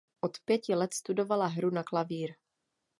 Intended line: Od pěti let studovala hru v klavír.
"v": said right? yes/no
no